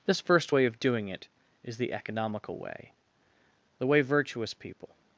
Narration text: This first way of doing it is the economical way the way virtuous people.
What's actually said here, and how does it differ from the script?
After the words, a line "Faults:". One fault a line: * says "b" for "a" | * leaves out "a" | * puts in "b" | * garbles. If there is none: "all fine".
This first way of doing it is the economical way the way virtuous people.
Faults:
all fine